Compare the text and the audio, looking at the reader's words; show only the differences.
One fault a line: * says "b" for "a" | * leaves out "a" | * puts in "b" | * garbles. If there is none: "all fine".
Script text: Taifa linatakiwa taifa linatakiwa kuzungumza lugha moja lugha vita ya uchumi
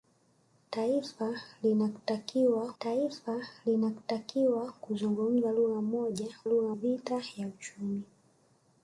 all fine